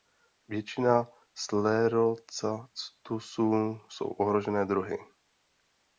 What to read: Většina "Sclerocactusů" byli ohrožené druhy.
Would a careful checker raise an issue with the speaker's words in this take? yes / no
yes